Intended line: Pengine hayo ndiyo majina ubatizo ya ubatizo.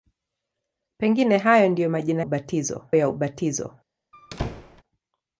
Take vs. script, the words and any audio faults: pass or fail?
fail